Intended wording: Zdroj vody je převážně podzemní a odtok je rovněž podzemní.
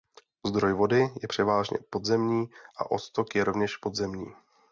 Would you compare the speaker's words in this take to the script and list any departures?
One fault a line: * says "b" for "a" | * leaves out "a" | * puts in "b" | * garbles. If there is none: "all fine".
all fine